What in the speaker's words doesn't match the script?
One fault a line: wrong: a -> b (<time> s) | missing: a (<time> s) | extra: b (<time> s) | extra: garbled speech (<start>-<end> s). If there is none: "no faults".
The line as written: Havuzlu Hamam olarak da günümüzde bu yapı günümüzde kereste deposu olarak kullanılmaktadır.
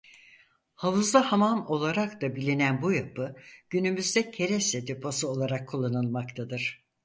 wrong: günümüzde -> bilinen (2.4 s)